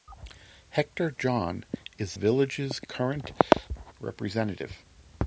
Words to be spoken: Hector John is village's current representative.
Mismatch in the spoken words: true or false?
false